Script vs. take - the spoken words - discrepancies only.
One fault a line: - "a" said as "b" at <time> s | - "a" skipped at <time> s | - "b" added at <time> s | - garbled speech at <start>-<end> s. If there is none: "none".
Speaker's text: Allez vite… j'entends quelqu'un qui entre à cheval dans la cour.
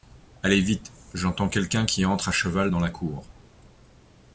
none